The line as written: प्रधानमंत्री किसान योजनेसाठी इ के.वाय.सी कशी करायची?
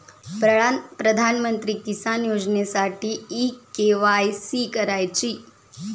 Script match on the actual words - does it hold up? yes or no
no